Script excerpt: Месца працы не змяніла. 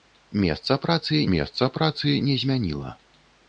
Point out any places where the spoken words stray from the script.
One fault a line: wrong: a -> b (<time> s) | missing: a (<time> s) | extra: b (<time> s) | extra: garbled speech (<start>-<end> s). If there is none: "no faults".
extra: месца працы (1.3 s)